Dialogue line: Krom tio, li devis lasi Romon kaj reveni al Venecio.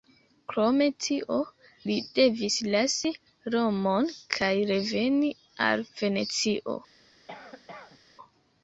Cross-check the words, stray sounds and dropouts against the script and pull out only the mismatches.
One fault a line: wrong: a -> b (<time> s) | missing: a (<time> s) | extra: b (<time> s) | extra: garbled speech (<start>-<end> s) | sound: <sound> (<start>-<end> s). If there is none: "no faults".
sound: cough (7.3-8.0 s)